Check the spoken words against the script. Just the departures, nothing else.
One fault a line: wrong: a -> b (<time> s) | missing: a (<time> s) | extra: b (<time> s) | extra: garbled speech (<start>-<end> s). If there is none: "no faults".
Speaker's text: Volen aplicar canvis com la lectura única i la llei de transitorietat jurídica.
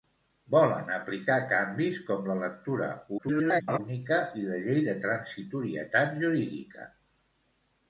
extra: garbled speech (3.2-3.8 s)